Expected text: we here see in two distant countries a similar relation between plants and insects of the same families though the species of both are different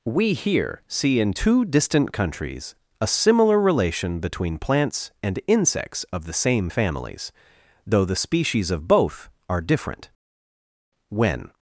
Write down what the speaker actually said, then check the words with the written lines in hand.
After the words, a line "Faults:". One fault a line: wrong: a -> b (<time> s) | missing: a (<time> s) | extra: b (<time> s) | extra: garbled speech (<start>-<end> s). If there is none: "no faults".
we here see in two distant countries a similar relation between plants and insects of the same families though the species of both are different when
Faults:
extra: when (11.1 s)